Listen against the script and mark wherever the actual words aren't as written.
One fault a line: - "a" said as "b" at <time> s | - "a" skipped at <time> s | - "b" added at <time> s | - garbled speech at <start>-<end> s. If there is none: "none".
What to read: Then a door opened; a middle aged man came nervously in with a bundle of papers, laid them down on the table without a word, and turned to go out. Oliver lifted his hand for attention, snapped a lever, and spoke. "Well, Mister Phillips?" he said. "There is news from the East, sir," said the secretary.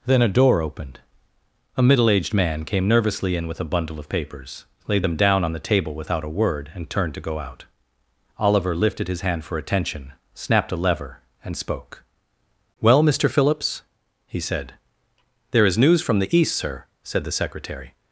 none